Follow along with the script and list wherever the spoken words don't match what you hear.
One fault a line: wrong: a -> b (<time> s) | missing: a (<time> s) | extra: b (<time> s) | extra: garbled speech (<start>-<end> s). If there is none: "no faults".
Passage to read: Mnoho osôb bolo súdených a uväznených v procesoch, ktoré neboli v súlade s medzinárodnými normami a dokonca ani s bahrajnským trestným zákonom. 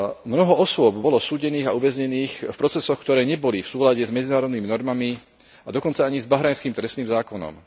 no faults